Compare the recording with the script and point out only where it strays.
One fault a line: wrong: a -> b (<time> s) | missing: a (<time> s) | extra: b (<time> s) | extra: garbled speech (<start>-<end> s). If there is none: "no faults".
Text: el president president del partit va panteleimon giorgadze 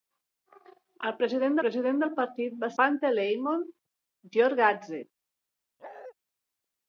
no faults